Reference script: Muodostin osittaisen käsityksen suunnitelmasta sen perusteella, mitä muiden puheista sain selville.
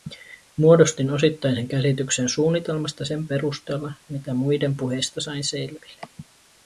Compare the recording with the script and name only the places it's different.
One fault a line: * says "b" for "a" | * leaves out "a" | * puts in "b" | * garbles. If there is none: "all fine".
all fine